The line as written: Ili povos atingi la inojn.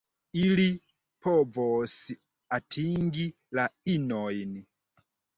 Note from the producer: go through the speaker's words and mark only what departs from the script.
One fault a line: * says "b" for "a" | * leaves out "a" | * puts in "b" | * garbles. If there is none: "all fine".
all fine